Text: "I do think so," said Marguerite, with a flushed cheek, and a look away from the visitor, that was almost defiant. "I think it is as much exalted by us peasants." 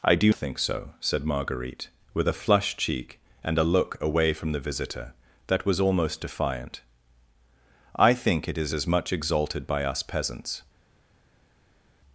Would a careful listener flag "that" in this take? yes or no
no